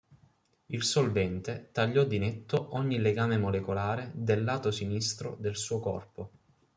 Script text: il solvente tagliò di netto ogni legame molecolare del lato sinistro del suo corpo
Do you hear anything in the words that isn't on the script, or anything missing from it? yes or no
no